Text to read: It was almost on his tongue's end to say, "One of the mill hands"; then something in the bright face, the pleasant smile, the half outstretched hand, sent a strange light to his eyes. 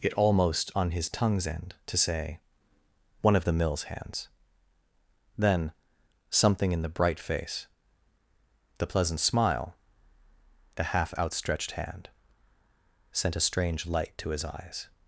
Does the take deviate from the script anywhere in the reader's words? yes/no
yes